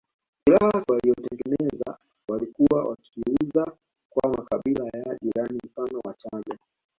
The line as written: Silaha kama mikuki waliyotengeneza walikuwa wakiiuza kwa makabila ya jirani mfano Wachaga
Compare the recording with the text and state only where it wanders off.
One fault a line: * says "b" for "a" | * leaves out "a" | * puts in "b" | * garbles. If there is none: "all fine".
* leaves out "kama mikuki"